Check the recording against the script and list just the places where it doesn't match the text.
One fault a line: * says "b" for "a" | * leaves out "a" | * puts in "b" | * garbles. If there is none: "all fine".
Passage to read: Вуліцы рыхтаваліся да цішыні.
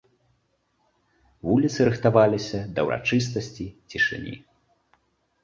* puts in "ўрачыстасці"